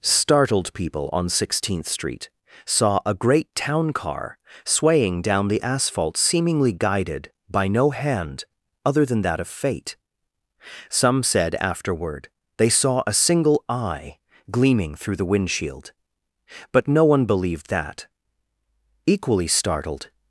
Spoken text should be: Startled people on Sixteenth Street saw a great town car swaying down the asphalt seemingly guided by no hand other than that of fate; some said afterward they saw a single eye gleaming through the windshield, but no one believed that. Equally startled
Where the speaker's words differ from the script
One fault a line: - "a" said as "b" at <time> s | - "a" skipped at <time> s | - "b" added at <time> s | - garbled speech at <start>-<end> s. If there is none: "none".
none